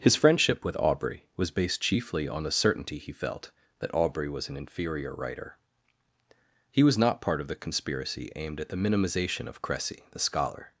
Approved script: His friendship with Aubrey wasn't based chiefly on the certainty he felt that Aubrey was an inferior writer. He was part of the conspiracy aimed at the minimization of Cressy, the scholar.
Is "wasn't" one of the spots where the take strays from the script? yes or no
yes